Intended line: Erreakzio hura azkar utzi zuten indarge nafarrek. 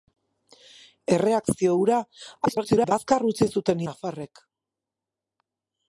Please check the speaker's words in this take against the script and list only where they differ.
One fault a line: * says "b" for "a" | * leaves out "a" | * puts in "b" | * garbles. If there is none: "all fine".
* garbles
* leaves out "indarge"